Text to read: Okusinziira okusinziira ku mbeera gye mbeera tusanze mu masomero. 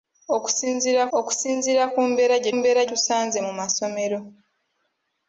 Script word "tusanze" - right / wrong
right